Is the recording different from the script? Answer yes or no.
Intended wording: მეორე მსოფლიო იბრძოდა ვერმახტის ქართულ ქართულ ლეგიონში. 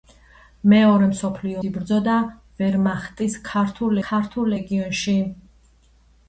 no